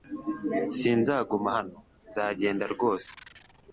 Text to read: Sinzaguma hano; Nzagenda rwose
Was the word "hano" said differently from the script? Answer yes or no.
no